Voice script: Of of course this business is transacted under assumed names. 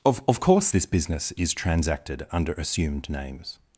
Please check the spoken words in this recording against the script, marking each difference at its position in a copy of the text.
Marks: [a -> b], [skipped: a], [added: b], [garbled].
Of of course this business is transacted under assumed names.